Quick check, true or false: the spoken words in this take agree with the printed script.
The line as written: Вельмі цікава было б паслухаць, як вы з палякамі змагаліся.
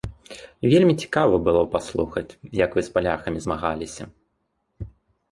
true